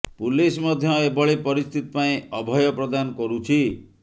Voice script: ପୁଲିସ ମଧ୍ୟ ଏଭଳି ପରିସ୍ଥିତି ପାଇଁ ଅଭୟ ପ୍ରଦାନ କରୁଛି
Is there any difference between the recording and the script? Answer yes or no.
no